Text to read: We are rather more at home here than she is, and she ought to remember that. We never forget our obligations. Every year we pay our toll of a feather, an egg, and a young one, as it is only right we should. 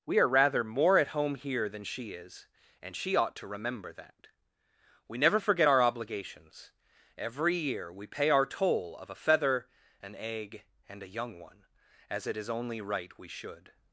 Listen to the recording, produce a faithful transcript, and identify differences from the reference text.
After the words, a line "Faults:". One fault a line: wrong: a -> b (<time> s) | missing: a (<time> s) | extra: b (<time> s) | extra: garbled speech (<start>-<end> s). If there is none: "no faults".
We are rather more at home here than she is, and she ought to remember that. We never forget our obligations. Every year we pay our toll of a feather, an egg, and a young one, as it is only right we should.
Faults:
no faults